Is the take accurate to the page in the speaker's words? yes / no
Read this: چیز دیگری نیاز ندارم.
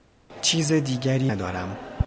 no